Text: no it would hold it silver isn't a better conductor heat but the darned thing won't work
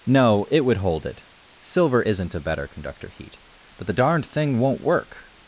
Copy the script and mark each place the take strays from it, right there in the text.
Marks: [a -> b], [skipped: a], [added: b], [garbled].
no it would hold it silver isn't a better conductor heat but the darned thing won't work